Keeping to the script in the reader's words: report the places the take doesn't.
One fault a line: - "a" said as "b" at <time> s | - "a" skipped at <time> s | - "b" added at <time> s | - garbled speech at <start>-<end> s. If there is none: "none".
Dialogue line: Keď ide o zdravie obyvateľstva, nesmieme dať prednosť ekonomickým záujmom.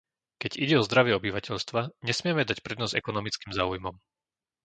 none